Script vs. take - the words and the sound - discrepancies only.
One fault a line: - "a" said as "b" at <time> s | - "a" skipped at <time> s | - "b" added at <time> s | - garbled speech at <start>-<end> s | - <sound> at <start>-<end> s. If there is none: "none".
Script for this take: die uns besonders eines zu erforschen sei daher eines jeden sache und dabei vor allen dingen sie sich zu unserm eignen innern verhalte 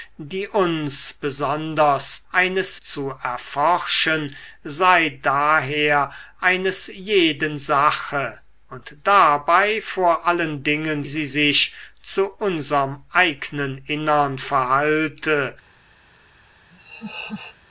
- laugh at 16.7-17.6 s